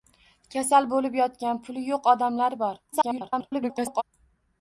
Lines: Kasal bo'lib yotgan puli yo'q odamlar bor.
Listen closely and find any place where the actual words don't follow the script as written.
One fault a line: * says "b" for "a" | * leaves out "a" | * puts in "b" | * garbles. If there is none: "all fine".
* garbles